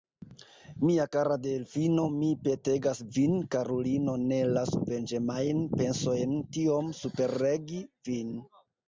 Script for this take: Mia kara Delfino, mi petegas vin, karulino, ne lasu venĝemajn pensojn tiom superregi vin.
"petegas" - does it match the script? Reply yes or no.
yes